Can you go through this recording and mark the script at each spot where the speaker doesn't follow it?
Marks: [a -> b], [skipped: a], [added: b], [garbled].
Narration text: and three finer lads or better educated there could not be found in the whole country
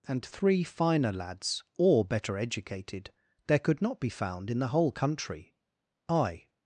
and three finer lads or better educated there could not be found in the whole country [added: i]